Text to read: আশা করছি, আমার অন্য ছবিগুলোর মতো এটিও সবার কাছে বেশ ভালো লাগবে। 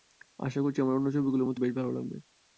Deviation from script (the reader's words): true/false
true